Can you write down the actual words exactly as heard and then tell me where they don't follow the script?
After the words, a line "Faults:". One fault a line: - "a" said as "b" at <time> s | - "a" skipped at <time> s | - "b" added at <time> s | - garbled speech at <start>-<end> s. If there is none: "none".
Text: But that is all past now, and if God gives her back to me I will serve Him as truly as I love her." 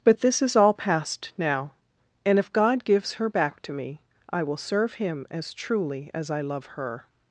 But this is all past now, and if God gives her back to me I will serve Him as truly as I love her."
Faults:
- "that" said as "this" at 0.2 s